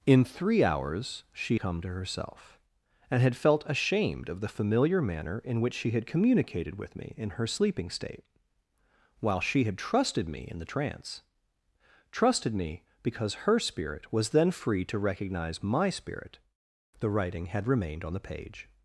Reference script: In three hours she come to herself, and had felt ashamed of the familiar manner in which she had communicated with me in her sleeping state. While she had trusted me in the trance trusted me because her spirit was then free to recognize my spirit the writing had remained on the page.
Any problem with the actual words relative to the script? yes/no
no